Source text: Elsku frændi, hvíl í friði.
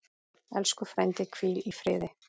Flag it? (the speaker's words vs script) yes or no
no